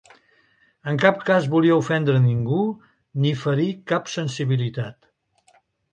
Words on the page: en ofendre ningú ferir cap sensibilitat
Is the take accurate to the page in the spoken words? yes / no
no